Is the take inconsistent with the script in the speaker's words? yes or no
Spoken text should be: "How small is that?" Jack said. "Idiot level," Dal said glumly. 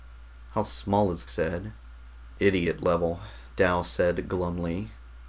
yes